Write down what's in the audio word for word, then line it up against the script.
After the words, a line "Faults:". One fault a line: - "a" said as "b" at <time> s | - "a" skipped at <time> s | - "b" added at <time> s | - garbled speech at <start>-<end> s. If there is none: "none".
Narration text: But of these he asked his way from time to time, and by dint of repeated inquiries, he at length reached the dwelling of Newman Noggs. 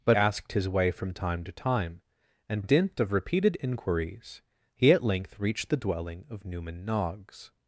But asked his way from time to time, and dint of repeated inquiries, he at length reached the dwelling of Newman Noggs.
Faults:
- "of these he" skipped at 0.2 s
- "by" skipped at 2.6 s